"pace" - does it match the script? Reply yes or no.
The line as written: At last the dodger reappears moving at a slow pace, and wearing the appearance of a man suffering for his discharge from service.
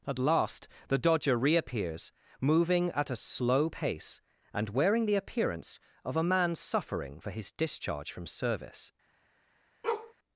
yes